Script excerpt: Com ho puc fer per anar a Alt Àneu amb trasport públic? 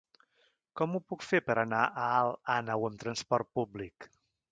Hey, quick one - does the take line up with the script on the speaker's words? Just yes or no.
yes